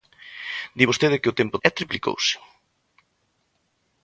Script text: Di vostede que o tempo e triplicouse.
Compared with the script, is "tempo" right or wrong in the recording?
right